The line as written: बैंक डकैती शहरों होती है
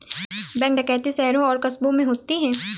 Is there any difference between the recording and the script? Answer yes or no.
yes